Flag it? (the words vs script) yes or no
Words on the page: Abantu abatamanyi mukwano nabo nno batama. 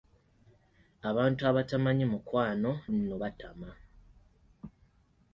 yes